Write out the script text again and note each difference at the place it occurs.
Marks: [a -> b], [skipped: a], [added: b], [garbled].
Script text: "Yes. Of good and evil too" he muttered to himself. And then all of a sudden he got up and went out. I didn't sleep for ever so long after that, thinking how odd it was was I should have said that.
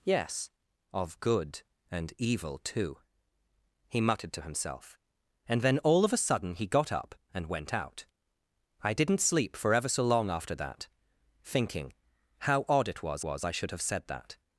"Yes. Of good and evil too" he muttered to himself. And then all of a sudden he got up and went out. I didn't sleep for ever so long after that, thinking how odd it was was I should have said that.